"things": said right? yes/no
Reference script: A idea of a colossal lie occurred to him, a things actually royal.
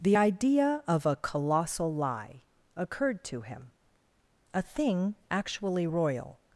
no